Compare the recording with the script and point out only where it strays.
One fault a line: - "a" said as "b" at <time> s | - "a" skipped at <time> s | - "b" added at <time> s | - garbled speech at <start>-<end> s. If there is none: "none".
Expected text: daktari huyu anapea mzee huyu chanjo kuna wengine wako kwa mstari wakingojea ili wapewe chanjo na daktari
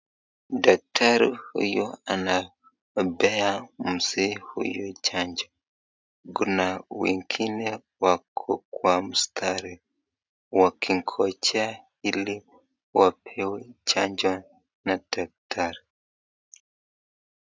none